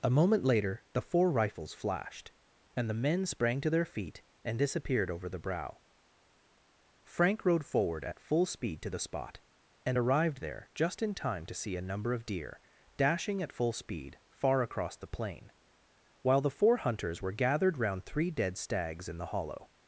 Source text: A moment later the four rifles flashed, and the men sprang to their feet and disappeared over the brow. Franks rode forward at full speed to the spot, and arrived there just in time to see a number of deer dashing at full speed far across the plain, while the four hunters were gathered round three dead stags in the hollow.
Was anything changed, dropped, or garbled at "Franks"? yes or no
yes